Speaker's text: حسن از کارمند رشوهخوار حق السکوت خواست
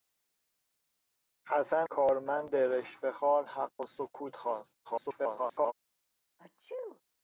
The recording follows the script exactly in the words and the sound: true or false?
false